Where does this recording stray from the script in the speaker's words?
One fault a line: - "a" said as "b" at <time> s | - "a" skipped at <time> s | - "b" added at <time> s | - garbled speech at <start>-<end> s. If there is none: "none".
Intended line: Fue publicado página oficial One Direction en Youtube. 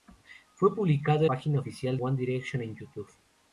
none